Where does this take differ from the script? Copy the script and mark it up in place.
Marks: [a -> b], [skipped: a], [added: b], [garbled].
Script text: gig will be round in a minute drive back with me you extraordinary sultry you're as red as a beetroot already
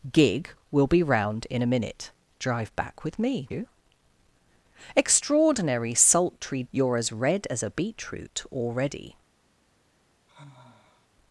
gig will be round in a minute drive back with me you extraordinary sultry you're as red as a beetroot already